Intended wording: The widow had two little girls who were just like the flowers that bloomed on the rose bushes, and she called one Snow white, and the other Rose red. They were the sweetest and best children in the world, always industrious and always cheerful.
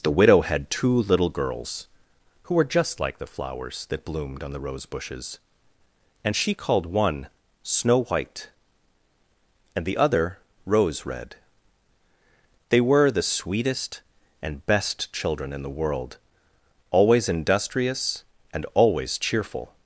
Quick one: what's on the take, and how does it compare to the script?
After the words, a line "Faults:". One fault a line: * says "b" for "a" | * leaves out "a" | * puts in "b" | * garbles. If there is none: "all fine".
The widow had two little girls who were just like the flowers that bloomed on the rose bushes, and she called one Snow white, and the other Rose red. They were the sweetest and best children in the world, always industrious and always cheerful.
Faults:
all fine